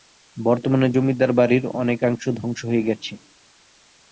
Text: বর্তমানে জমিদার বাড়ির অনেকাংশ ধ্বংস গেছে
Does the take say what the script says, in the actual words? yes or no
no